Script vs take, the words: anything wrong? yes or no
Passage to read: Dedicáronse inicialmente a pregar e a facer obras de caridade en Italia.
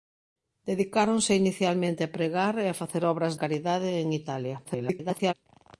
yes